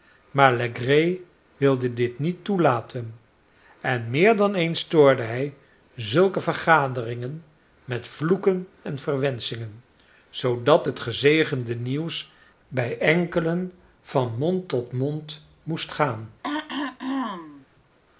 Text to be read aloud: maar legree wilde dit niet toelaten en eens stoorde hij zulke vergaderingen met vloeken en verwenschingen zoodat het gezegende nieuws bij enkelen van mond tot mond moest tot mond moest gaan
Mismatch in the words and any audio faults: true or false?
true